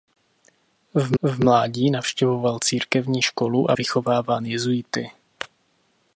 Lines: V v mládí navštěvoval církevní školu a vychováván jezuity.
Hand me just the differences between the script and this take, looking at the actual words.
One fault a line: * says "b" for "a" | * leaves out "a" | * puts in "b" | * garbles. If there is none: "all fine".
all fine